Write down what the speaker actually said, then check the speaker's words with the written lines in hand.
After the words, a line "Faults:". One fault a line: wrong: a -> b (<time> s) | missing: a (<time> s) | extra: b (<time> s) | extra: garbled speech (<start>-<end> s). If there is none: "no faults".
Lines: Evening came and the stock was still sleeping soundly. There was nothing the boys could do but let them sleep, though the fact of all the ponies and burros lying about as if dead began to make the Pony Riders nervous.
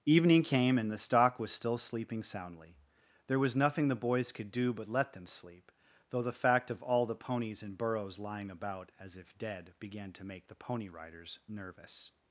Evening came and the stock was still sleeping soundly. There was nothing the boys could do but let them sleep, though the fact of all the ponies and burros lying about as if dead began to make the Pony Riders nervous.
Faults:
no faults